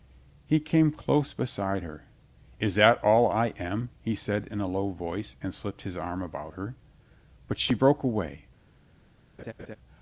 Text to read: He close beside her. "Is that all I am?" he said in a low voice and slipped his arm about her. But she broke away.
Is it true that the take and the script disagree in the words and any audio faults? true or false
true